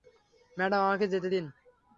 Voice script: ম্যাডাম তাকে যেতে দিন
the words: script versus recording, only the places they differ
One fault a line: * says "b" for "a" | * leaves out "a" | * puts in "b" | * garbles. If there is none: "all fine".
* says "আমাকে" for "তাকে"